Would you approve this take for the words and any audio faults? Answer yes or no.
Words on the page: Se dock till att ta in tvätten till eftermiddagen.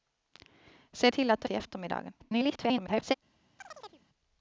no